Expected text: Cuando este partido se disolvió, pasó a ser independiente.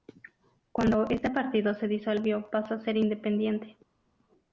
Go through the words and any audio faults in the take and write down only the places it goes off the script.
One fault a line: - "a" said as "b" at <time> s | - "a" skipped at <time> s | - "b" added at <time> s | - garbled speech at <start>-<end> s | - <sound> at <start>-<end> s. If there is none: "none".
none